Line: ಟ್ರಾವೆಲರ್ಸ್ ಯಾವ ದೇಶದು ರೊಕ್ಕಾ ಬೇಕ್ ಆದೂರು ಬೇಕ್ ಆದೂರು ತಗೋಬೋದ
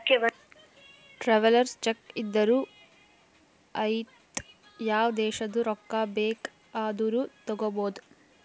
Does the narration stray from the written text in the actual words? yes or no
yes